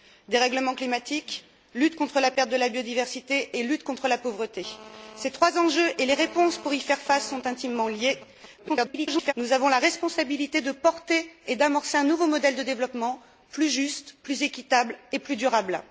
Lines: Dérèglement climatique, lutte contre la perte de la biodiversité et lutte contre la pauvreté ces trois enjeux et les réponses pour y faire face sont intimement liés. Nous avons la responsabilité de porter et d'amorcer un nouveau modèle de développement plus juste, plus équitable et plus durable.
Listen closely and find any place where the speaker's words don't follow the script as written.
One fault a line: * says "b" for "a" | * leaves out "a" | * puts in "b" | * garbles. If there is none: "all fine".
* garbles